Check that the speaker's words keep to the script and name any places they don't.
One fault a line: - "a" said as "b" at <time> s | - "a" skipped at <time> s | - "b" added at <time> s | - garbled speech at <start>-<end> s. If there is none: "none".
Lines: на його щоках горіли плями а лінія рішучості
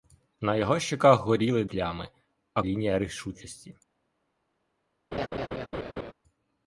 none